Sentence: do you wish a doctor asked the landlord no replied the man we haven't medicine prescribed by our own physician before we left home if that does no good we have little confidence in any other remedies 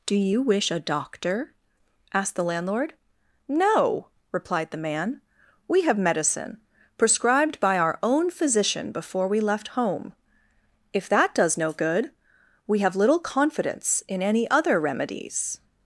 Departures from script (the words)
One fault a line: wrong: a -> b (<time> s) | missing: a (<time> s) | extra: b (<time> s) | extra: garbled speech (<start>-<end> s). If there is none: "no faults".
wrong: haven't -> have (5.8 s)